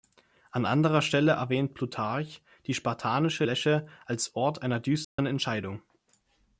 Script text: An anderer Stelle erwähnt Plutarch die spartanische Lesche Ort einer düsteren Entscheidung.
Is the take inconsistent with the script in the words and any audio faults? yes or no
yes